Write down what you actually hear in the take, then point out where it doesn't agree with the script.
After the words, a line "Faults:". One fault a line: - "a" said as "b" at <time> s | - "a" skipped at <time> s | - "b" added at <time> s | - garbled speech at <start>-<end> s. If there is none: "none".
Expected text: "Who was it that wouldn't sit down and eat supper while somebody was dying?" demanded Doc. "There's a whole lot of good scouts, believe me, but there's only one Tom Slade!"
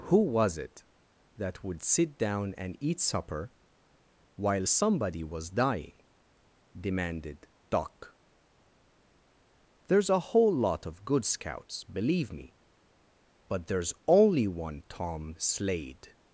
"Who was it that would sit down and eat supper while somebody was dying?" demanded Doc. "There's a whole lot of good scouts, believe me, but there's only one Tom Slade!"
Faults:
- "wouldn't" said as "would" at 1.6 s